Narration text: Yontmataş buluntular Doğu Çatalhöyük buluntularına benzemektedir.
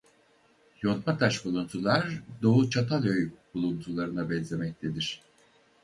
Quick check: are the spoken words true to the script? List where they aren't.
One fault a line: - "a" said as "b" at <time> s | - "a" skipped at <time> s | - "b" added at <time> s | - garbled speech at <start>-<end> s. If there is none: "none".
none